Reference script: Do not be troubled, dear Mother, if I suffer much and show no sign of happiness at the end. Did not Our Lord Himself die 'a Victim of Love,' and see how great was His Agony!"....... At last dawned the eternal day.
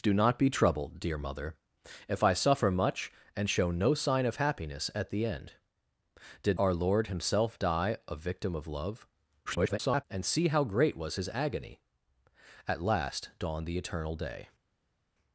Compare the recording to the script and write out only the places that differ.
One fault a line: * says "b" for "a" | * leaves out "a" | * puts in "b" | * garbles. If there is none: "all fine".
* leaves out "not"
* garbles